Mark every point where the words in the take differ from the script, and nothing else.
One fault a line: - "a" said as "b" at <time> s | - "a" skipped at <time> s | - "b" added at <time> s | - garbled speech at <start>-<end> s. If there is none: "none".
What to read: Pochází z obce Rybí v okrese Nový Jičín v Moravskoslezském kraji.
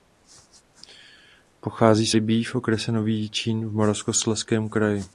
- "obce" skipped at 2.1 s